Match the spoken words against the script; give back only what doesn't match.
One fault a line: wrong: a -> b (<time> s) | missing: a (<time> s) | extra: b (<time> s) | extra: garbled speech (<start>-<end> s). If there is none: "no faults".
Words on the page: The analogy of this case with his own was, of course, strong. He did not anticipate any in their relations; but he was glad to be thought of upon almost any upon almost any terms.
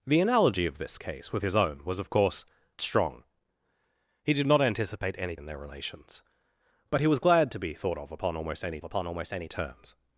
no faults